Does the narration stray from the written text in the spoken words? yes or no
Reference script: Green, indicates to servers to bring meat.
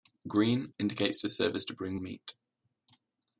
no